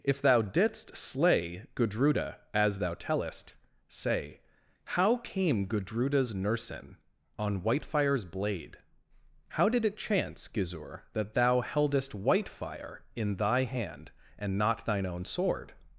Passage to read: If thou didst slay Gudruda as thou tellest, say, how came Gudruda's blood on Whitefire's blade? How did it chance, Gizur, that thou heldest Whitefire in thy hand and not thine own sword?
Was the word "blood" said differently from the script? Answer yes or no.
yes